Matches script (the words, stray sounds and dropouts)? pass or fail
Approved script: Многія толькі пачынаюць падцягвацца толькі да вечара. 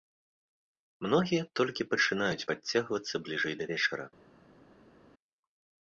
fail